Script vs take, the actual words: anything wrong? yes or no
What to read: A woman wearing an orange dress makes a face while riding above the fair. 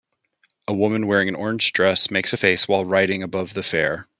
no